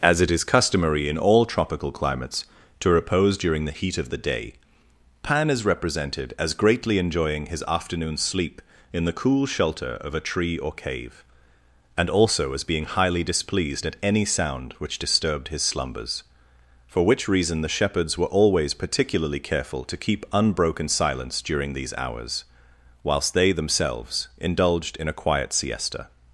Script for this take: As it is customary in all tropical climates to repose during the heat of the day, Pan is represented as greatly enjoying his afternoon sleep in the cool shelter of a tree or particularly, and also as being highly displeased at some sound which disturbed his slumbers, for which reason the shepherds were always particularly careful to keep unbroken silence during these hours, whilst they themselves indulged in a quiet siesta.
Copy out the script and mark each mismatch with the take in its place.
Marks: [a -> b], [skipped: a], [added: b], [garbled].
As it is customary in all tropical climates to repose during the heat of the day, Pan is represented as greatly enjoying his afternoon sleep in the cool shelter of a tree or [particularly, -> cave] and also as being highly displeased at [some -> any] sound which disturbed his slumbers, for which reason the shepherds were always particularly careful to keep unbroken silence during these hours, whilst they themselves indulged in a quiet siesta.